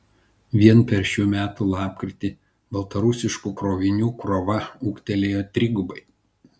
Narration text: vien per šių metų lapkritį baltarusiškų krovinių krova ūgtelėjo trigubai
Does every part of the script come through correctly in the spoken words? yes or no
yes